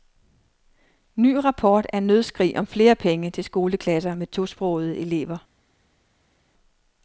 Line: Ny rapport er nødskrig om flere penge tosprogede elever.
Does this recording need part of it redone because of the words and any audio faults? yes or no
yes